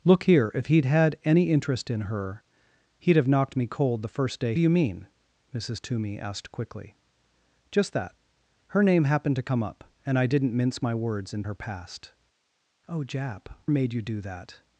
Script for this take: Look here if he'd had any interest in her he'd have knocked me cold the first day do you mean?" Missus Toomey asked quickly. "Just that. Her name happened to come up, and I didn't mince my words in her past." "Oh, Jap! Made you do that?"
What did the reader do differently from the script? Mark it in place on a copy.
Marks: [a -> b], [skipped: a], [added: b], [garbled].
Look here if he'd had any interest in her he'd have knocked me cold the first day do you mean?" Missus Toomey asked quickly. "Just that. Her name happened to come up, and I didn't mince my words in her past." "Oh, Jap! Made you do that?"